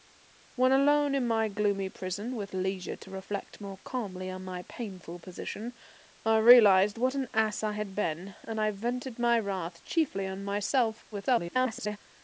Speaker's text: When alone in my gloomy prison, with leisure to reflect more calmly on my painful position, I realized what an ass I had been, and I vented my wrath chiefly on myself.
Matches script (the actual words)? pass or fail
fail